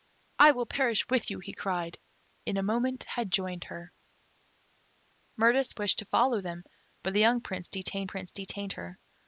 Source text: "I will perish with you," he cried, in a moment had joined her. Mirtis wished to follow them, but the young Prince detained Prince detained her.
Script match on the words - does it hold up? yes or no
yes